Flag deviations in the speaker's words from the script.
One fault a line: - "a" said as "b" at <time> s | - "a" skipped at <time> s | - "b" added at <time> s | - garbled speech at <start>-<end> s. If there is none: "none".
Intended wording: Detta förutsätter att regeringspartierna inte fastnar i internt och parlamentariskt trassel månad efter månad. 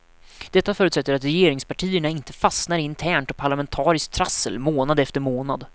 none